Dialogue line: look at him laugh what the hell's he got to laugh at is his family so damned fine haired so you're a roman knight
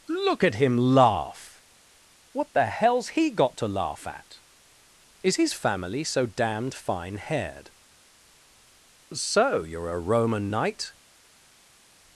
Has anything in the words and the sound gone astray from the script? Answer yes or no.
no